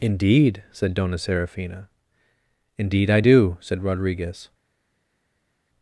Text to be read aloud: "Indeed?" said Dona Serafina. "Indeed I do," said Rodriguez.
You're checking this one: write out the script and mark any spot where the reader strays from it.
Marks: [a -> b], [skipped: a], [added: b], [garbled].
"Indeed?" said Dona Serafina. "Indeed I do," said Rodriguez.